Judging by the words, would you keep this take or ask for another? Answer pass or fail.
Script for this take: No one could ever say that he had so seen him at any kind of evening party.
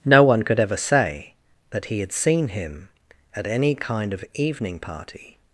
fail